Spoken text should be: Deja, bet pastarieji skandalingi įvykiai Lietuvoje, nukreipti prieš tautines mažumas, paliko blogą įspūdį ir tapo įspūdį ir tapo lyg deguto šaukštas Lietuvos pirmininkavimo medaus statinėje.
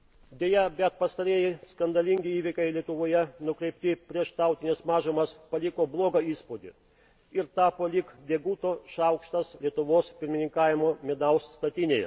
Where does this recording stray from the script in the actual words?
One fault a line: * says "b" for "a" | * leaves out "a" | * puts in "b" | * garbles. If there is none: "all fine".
* leaves out "įspūdį ir tapo"